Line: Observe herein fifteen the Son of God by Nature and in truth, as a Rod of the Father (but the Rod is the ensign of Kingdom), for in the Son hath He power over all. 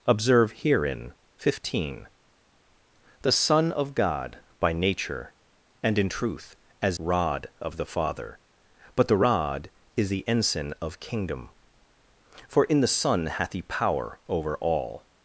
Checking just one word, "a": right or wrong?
wrong